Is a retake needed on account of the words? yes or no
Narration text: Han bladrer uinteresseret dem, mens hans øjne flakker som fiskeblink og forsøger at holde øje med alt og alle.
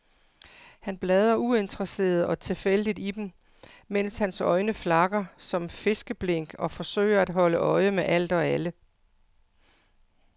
yes